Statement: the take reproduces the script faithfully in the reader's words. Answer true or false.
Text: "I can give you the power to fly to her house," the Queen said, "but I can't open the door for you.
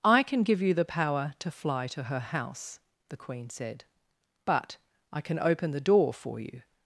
false